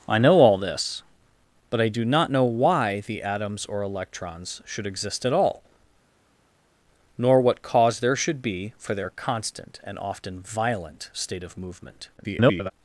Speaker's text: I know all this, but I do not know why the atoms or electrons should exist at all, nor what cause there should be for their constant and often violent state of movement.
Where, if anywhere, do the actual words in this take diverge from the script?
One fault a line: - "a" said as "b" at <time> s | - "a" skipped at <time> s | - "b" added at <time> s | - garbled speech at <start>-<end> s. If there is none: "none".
- garbled speech at 12.2-12.7 s